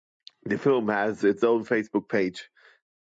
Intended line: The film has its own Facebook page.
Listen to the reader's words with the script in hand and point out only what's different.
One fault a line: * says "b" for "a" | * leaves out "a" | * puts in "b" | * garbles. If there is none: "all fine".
all fine